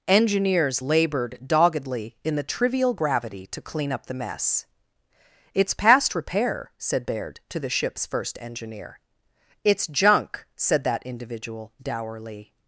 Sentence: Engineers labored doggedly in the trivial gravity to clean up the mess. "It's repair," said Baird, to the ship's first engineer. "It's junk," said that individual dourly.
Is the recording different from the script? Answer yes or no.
yes